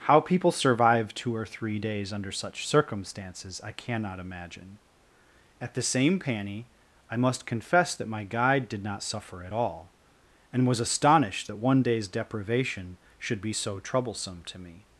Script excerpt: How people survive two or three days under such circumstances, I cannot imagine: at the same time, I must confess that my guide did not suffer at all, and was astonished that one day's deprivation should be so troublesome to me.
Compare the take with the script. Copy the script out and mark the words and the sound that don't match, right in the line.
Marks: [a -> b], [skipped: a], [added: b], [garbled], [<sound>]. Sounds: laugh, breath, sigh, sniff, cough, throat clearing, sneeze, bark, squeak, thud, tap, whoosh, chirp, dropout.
How people survive two or three days under such circumstances, I cannot imagine: at the same [time, -> panny] I must confess that my guide did not suffer at all, and was astonished that one day's deprivation should be so troublesome to me.